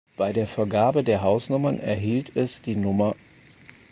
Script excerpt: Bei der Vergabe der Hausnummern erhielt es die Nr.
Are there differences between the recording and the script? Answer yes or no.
no